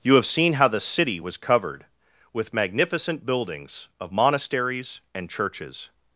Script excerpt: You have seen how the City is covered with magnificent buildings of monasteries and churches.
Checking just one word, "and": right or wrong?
right